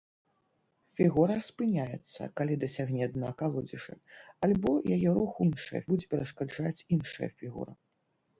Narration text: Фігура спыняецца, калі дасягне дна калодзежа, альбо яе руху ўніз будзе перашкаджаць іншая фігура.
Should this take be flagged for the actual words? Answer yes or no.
yes